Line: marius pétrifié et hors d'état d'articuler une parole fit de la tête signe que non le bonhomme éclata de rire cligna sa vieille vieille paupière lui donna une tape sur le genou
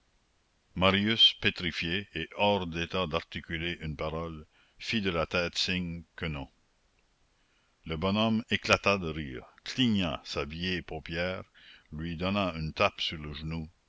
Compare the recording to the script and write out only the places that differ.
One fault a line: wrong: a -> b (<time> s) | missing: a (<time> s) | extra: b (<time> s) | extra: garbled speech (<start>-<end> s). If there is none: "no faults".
missing: vieille (10.8 s)